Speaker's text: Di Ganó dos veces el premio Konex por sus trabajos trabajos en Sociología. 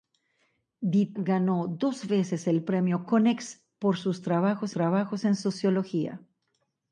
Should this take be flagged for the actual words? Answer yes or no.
no